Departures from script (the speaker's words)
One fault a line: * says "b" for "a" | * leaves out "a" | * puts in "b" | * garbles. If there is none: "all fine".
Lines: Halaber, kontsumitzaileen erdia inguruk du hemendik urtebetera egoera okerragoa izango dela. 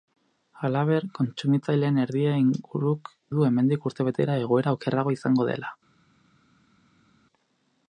all fine